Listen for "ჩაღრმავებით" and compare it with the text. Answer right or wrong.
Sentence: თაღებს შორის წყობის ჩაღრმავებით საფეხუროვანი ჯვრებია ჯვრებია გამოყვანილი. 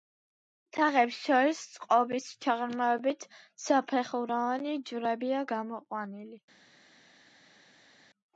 right